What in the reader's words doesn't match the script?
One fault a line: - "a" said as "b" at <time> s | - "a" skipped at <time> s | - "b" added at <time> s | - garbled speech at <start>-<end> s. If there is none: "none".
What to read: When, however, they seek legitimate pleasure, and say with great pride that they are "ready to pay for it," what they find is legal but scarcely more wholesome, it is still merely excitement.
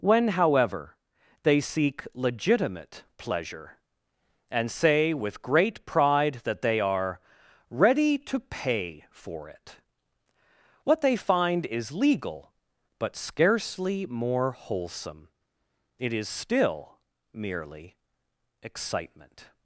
none